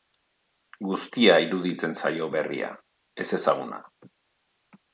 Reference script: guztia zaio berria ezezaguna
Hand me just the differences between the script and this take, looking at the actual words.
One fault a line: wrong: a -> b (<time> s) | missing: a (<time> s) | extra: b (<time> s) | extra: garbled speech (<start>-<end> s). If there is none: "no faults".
extra: iruditzen (1.4 s)